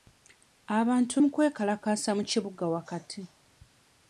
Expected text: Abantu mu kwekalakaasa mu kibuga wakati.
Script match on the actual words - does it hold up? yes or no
yes